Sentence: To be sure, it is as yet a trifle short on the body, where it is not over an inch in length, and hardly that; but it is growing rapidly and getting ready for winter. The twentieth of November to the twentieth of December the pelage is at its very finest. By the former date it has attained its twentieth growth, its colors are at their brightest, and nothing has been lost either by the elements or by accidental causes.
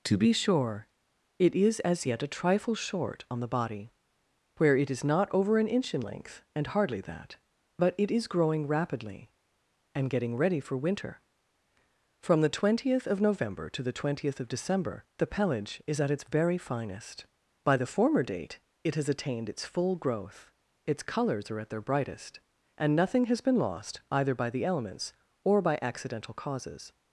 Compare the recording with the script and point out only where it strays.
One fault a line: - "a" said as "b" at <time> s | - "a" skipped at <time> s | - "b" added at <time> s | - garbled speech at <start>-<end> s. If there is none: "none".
- "From" added at 12.2 s
- "twentieth" said as "full" at 19.6 s